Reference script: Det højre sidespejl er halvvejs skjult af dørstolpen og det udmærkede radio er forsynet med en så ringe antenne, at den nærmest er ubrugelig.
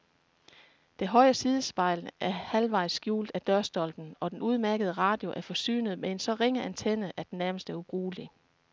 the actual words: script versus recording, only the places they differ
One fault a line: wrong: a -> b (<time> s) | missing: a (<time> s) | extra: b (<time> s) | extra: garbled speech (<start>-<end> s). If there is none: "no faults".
wrong: det -> den (4.3 s)